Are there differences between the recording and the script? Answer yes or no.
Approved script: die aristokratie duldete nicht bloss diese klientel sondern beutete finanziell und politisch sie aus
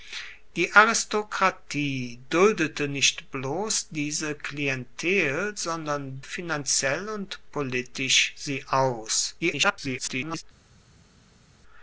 yes